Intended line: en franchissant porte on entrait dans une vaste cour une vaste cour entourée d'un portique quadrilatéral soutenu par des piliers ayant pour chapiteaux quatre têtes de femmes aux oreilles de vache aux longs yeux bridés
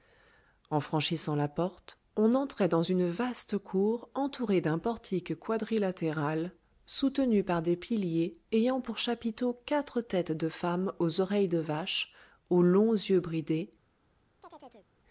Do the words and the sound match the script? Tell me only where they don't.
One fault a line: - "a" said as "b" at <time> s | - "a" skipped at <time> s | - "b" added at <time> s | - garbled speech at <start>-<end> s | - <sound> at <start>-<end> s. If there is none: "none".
- "la" added at 1.4 s
- "une vaste cour" skipped at 4.1 s
- chirp at 14.4-14.9 s